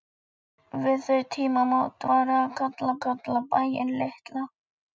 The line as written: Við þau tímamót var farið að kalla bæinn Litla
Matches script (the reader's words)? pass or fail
fail